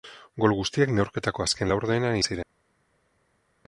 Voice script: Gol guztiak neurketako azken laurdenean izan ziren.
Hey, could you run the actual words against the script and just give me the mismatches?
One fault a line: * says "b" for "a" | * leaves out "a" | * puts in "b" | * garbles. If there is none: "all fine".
* leaves out "izan"